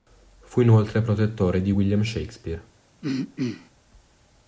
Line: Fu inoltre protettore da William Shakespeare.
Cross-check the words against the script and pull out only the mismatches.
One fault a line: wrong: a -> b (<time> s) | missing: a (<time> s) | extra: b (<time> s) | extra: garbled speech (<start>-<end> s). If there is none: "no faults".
wrong: da -> di (1.6 s)